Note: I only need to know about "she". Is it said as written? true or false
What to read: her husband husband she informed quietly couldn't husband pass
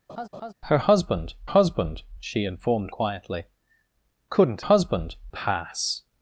true